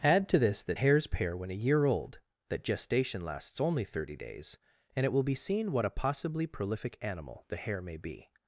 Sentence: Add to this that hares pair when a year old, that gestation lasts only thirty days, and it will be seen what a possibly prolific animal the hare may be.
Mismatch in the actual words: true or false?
false